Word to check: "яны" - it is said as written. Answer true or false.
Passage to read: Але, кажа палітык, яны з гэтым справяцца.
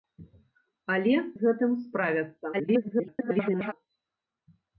false